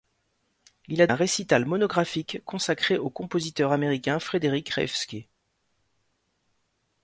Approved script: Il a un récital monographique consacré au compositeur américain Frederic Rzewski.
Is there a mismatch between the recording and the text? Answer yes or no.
no